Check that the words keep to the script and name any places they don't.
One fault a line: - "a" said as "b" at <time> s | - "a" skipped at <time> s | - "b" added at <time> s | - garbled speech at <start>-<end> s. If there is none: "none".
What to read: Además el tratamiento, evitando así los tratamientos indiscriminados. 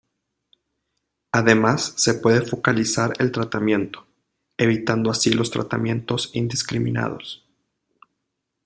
- "se puede focalizar" added at 1.9 s